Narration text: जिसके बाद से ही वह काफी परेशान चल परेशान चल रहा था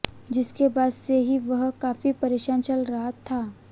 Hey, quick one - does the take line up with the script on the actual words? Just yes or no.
no